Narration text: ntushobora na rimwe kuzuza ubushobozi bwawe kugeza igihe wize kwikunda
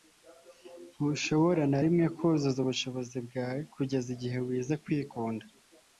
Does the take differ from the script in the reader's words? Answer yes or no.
no